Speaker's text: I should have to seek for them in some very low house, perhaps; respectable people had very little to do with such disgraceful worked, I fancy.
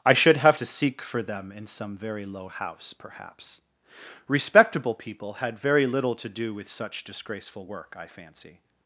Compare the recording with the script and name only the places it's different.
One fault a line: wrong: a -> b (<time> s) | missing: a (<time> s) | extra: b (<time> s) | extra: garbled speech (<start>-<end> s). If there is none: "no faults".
wrong: worked -> work (7.6 s)